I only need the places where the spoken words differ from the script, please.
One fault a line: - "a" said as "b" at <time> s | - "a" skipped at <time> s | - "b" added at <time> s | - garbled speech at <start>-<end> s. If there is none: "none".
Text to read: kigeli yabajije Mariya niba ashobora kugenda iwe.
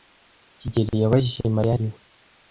- "niba ashobora kugenda" skipped at 1.8 s